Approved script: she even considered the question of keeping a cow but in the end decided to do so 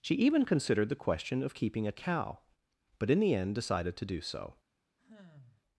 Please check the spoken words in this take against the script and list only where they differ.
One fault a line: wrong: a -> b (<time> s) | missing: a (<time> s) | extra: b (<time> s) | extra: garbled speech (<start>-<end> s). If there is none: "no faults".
no faults